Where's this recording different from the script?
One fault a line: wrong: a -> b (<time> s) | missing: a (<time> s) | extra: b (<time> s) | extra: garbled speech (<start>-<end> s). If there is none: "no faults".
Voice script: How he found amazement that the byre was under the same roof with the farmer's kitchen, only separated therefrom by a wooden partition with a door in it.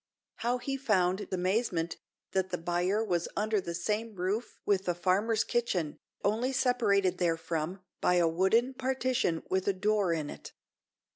no faults